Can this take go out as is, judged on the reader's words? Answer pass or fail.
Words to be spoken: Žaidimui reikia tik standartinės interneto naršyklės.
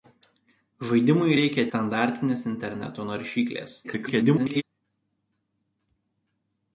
fail